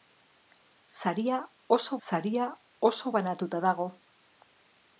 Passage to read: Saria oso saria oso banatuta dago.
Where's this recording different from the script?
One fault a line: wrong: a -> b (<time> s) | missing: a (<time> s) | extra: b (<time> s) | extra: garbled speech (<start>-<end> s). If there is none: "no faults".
no faults